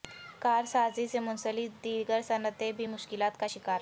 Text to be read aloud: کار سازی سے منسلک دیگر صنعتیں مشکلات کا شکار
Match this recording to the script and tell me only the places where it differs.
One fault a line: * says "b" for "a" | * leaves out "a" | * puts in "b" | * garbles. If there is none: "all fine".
* puts in "بھی"